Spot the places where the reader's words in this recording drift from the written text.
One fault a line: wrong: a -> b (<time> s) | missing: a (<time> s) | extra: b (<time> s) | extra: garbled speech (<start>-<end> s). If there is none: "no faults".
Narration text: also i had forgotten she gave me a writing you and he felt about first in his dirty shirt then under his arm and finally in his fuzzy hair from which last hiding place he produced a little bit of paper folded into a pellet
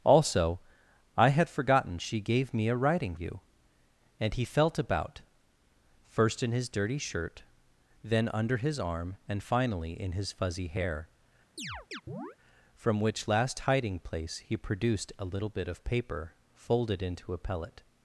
no faults